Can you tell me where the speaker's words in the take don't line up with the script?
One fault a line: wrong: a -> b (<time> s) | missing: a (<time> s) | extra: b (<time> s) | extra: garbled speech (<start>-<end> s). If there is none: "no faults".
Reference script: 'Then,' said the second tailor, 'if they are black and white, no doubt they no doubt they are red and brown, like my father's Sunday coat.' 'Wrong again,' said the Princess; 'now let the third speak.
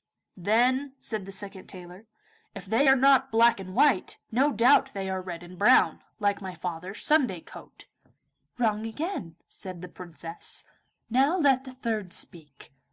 extra: not (2.9 s)
missing: no doubt they (5.1 s)